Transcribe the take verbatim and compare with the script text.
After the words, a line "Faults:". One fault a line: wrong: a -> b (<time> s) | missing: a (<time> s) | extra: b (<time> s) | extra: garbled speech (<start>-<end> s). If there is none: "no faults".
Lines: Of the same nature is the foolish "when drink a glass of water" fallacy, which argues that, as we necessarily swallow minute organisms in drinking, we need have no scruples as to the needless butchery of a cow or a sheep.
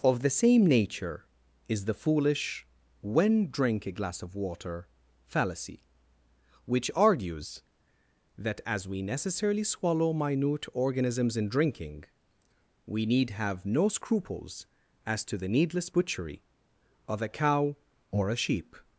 Of the same nature is the foolish "when drink a glass of water" fallacy, which argues that, as we necessarily swallow minute organisms in drinking, we need have no scruples as to the needless butchery of a cow or a sheep.
Faults:
no faults